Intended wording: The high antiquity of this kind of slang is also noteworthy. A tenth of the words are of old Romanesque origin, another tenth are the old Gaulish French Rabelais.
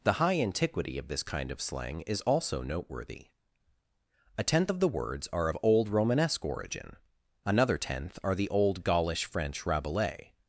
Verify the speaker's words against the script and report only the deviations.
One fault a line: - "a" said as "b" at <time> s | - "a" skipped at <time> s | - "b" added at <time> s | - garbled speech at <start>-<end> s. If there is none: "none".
none